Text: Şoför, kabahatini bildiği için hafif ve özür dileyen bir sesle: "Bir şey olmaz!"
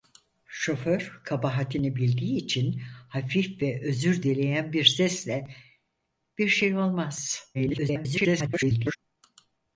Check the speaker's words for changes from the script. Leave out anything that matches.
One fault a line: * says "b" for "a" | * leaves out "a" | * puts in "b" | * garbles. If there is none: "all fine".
* garbles